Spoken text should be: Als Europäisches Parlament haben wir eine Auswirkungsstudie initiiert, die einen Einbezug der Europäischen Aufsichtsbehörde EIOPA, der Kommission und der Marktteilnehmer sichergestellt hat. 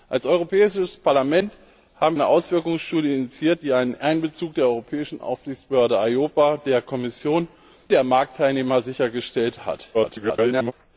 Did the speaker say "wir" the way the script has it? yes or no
no